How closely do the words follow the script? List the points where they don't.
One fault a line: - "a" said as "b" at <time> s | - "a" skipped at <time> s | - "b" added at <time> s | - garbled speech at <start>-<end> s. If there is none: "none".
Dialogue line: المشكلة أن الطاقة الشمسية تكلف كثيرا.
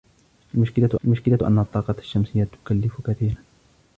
- "المشكلة" added at 1.0 s